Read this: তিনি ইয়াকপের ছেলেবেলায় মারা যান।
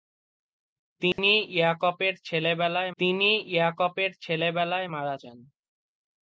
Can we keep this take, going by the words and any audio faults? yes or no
no